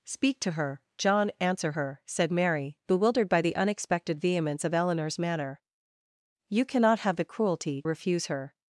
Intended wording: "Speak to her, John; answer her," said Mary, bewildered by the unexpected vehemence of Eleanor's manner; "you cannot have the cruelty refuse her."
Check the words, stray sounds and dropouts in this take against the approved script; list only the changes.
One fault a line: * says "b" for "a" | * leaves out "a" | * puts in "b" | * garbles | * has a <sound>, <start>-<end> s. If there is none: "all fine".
all fine